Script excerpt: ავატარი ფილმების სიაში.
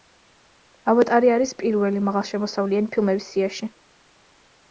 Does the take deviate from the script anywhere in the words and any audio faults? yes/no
yes